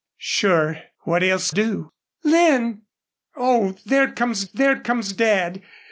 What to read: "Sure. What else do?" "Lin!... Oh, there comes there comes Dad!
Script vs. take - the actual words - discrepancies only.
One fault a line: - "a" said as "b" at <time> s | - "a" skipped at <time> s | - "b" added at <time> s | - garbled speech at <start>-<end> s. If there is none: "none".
none